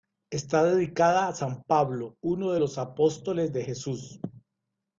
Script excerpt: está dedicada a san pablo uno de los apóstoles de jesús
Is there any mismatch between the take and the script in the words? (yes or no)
no